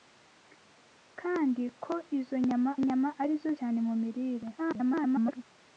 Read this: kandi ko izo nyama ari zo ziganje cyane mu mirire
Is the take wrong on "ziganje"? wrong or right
wrong